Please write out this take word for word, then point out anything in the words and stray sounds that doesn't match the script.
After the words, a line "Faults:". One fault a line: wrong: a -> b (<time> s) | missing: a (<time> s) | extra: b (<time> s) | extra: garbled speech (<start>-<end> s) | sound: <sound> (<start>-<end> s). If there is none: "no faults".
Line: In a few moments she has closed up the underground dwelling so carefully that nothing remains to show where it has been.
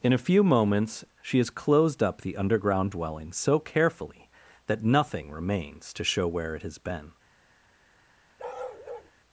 In a few moments she has closed up the underground dwelling so carefully that nothing remains to show where it has been.
Faults:
sound: bark (8.4-9.1 s)